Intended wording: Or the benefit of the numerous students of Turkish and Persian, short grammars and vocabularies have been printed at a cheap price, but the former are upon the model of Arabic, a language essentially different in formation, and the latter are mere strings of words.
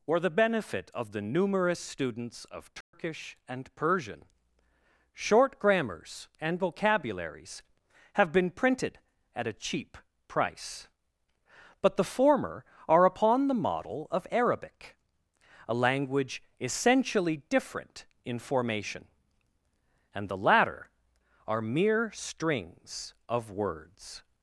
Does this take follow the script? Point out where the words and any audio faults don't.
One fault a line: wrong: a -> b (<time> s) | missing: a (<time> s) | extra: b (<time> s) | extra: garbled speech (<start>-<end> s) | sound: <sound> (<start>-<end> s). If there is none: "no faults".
sound: dropout (2.8-2.9 s)